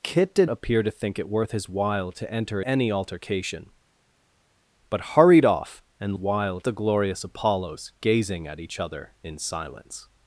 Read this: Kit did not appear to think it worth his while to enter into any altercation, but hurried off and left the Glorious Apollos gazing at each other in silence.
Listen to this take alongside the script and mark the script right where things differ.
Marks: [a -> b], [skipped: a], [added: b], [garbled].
Kit did [skipped: not] appear to think it worth his while to enter [skipped: into] any altercation, but hurried off and [left -> while] the Glorious Apollos gazing at each other in silence.